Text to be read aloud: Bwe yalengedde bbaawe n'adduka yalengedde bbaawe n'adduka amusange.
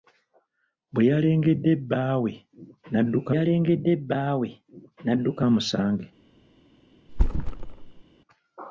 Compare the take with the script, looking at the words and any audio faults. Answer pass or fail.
fail